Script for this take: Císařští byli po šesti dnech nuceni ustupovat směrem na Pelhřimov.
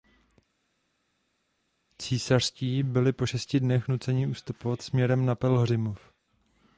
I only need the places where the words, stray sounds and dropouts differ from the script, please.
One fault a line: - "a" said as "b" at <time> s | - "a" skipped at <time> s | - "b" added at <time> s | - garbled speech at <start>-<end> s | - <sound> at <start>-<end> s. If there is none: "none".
none